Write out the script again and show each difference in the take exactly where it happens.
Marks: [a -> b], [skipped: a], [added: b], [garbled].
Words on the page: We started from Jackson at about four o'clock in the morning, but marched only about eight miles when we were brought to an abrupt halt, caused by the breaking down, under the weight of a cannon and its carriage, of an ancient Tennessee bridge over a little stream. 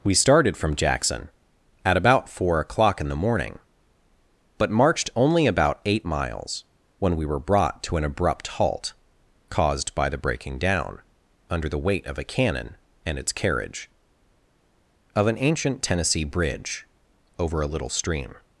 We started from Jackson at about four o'clock in the morning, but marched only about eight miles when we were brought to an abrupt halt, caused by the breaking down, under the weight of a cannon and its carriage, of an ancient Tennessee bridge over a little stream.